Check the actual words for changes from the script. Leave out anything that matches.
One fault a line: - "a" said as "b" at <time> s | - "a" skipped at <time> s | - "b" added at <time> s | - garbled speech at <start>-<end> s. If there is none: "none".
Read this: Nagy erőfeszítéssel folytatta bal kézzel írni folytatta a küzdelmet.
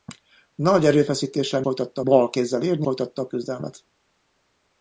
none